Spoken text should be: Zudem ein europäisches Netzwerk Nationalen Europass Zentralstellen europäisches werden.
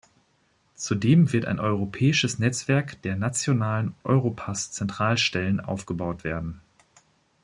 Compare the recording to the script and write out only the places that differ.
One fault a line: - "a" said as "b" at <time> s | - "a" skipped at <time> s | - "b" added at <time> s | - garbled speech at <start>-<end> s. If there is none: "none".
- "wird" added at 1.3 s
- "der" added at 3.0 s
- "europäisches" said as "aufgebaut" at 5.6 s